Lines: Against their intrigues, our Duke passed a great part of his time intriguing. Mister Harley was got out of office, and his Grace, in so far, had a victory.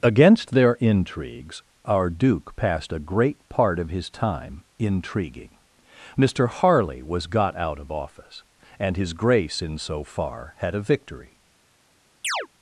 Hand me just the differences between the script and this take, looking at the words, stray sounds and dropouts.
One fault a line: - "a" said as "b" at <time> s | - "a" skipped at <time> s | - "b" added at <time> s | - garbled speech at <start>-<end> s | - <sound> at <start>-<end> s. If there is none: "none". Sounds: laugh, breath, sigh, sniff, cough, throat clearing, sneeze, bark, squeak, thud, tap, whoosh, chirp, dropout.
- chirp at 12.2-12.5 s